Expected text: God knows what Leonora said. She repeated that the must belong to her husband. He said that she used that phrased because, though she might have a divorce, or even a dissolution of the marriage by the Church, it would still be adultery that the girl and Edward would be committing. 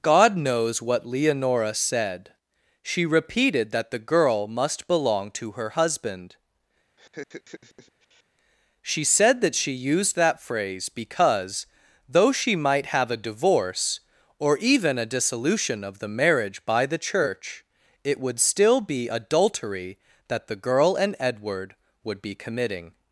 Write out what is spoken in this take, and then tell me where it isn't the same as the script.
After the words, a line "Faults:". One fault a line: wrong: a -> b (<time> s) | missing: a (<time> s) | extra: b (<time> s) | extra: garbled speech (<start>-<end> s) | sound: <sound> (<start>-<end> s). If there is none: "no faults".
God knows what Leonora said. She repeated that the girl must belong to her husband. She said that she used that phrase because, though she might have a divorce, or even a dissolution of the marriage by the Church, it would still be adultery that the girl and Edward would be committing.
Faults:
extra: girl (4.0 s)
sound: laugh (7.0-8.2 s)
wrong: He -> She (8.8 s)
wrong: phrased -> phrase (10.4 s)